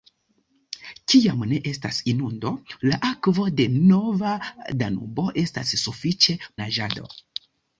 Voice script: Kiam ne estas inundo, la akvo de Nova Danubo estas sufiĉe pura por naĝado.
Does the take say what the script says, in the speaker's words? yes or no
no